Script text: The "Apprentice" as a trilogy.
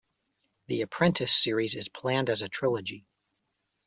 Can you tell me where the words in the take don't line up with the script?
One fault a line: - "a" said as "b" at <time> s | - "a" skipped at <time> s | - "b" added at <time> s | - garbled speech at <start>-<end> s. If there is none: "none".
- "series is planned" added at 1.3 s